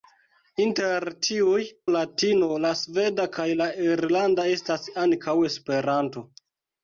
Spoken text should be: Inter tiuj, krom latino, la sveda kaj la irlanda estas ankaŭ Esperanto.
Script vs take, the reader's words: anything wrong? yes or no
yes